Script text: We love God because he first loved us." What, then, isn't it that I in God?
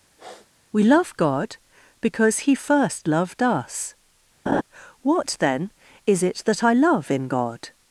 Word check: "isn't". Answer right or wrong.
wrong